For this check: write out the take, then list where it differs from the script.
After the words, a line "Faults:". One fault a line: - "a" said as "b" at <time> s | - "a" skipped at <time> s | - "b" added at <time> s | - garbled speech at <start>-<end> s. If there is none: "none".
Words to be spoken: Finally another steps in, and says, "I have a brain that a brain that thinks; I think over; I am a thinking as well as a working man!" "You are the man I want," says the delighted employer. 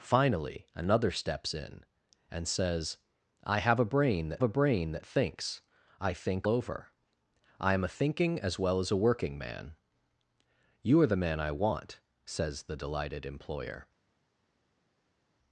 Finally another steps in, and says, "I have a brain that a brain that thinks; I think over; I am a thinking as well as a working man!" "You are the man I want," says the delighted employer.
Faults:
none